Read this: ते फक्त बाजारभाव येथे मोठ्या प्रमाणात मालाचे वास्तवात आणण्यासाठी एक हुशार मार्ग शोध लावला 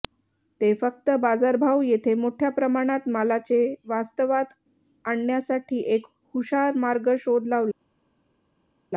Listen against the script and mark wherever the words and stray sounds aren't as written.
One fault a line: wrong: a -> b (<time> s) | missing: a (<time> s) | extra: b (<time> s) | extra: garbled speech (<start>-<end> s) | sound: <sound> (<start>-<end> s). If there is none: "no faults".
no faults